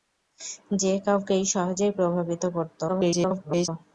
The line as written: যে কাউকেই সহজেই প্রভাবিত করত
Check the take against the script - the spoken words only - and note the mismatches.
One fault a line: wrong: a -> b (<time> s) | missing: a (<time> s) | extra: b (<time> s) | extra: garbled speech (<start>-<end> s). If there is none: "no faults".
extra: garbled speech (2.9-3.7 s)